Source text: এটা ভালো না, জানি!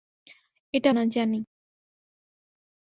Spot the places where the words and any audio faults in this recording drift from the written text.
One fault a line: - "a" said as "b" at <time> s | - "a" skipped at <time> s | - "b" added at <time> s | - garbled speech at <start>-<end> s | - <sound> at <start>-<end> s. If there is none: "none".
- "ভালো" skipped at 0.9 s